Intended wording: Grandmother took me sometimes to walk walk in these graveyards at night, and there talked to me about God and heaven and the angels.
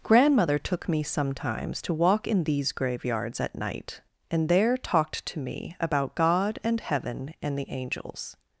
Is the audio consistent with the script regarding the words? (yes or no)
no